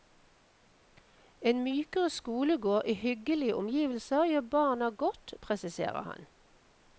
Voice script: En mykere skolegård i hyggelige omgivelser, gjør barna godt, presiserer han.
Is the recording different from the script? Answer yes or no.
no